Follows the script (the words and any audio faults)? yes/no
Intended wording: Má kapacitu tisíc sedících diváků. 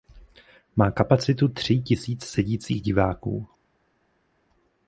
no